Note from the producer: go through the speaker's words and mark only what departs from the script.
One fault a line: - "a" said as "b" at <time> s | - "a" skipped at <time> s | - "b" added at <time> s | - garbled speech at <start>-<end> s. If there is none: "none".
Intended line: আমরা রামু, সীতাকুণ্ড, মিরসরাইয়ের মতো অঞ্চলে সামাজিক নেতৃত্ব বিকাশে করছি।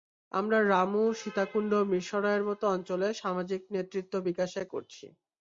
none